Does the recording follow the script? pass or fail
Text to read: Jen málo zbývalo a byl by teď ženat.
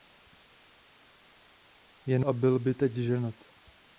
fail